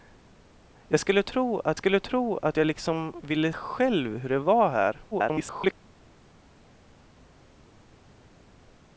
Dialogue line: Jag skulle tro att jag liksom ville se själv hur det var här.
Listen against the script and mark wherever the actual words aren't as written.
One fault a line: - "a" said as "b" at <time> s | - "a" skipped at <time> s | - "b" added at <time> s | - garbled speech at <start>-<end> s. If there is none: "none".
- "skulle tro att" added at 1.8 s
- "se" skipped at 3.5 s
- garbled speech at 5.1-5.7 s